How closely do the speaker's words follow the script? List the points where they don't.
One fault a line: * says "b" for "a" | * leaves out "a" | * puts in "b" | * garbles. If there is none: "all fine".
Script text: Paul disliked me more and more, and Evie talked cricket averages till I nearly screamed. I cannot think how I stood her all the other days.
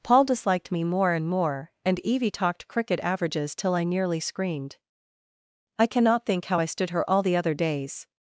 all fine